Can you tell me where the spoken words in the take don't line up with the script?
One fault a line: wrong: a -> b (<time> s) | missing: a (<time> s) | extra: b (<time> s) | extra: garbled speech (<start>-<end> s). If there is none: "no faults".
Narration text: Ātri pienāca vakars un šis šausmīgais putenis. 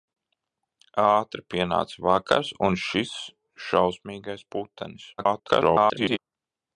extra: garbled speech (5.2-6.2 s)